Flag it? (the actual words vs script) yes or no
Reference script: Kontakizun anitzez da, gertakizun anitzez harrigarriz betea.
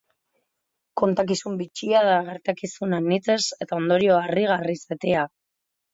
yes